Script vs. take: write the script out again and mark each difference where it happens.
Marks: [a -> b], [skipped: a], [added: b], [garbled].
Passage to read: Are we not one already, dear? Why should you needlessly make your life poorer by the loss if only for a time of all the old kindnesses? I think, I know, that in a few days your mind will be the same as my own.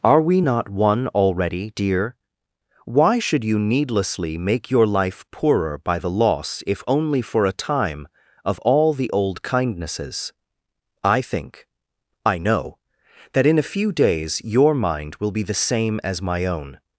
Are we not one already, dear? Why should you needlessly make your life poorer by the loss if only for a time of all the old kindnesses? I think, I know, that in a few days your mind will be the same as my own.